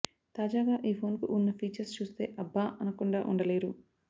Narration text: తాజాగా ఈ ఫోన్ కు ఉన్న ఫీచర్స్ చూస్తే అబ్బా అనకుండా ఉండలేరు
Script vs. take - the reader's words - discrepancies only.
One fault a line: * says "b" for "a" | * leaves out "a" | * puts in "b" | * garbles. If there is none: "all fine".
all fine